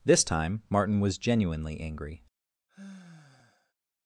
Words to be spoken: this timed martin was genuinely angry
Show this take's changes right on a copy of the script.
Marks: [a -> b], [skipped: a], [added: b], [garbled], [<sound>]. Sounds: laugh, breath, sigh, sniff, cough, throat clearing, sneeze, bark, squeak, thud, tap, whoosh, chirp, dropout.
this [timed -> time] martin was genuinely angry [sigh]